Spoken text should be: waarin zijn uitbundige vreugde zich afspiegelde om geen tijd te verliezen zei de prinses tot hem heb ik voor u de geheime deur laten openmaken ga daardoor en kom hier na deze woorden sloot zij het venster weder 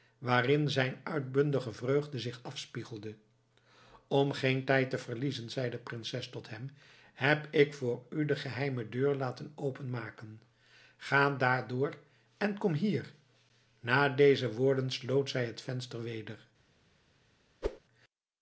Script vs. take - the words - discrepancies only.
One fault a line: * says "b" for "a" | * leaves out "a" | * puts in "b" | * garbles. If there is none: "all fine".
all fine